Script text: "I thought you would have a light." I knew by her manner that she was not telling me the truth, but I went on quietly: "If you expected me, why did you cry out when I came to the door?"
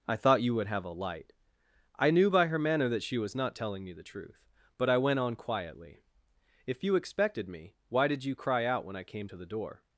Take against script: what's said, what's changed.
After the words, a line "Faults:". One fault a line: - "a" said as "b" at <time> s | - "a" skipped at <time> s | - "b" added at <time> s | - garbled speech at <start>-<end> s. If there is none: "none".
"I thought you would have a light." I knew by her manner that she was not telling me the truth, but I went on quietly: "If you expected me, why did you cry out when I came to the door?"
Faults:
none